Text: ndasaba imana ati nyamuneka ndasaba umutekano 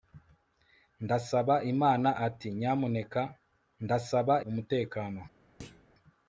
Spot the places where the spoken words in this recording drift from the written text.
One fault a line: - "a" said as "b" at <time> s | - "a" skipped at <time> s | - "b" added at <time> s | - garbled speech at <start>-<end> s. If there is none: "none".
none